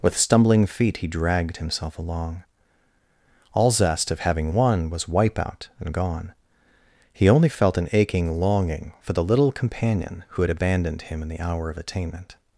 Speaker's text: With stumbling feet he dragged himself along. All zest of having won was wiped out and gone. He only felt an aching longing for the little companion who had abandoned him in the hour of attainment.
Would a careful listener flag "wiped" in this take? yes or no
yes